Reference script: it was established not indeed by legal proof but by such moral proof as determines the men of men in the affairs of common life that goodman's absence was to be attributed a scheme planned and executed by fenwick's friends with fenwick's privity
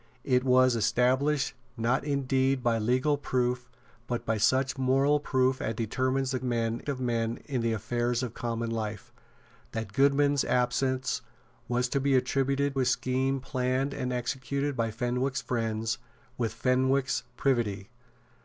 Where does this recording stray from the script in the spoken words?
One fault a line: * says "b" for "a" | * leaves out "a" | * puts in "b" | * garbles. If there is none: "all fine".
all fine